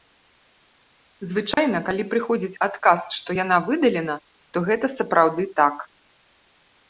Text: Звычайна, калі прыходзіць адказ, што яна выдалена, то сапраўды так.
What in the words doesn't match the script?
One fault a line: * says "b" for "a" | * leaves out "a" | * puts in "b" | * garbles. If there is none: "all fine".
* puts in "гэта"